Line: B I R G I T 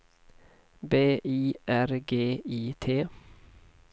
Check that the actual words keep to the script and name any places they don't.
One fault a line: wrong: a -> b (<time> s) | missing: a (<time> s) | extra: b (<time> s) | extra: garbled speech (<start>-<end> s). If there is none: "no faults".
no faults